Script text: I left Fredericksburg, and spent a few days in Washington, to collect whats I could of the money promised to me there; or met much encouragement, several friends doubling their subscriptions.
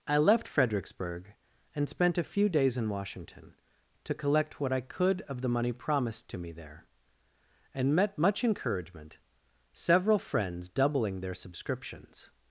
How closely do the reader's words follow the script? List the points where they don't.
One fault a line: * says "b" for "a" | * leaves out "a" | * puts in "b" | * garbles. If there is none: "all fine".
* says "what" for "whats"
* says "and" for "or"